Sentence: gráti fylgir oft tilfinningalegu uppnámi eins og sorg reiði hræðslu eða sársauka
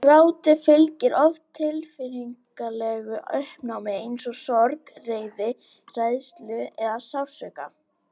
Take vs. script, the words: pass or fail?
pass